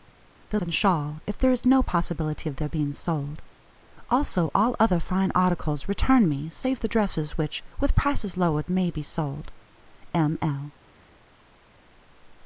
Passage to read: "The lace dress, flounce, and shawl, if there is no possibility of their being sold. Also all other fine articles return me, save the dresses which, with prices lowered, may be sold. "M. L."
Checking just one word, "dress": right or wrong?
wrong